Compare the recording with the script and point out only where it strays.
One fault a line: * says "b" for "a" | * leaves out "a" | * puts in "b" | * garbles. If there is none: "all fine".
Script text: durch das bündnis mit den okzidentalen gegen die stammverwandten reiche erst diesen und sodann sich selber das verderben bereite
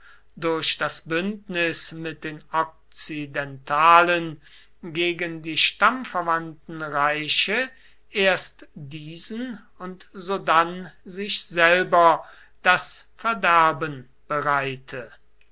all fine